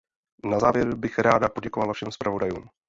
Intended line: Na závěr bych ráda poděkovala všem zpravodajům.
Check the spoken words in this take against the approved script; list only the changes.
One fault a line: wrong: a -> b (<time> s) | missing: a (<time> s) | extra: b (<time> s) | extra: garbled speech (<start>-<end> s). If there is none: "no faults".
no faults